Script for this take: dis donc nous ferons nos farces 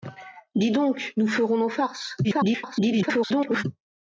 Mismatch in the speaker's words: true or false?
true